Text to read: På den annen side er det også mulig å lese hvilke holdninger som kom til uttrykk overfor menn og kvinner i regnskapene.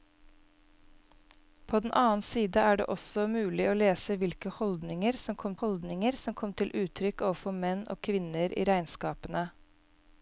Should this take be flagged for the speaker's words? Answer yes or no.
yes